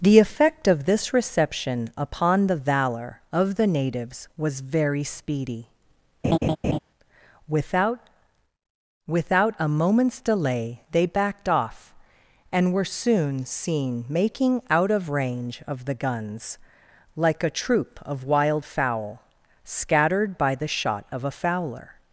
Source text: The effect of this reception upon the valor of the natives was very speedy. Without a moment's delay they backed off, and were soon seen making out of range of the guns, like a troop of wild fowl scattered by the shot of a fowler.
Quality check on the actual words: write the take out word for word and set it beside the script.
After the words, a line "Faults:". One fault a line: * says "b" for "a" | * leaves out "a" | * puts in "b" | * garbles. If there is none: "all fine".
The effect of this reception upon the valor of the natives was very speedy. Without Without a moment's delay they backed off, and were soon seen making out of range of the guns, like a troop of wild fowl scattered by the shot of a fowler.
Faults:
* puts in "Without"